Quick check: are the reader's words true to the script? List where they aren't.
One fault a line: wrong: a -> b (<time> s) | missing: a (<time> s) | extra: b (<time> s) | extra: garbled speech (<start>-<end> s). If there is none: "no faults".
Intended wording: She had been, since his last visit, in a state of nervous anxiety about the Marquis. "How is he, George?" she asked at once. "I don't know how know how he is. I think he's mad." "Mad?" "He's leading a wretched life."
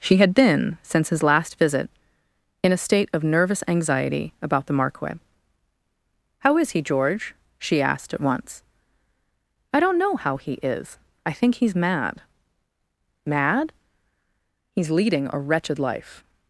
missing: know how (10.4 s)